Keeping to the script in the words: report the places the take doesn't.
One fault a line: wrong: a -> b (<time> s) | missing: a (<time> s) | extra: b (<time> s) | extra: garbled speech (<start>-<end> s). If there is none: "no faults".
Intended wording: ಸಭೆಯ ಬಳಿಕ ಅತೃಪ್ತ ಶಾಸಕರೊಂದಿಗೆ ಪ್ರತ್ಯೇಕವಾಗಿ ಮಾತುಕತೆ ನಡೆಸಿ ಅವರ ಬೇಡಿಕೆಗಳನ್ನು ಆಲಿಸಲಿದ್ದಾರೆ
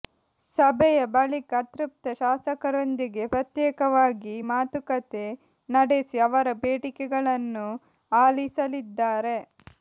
no faults